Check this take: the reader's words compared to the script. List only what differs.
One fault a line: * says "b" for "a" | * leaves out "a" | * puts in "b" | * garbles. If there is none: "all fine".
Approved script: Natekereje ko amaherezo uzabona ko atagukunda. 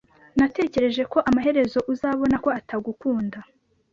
all fine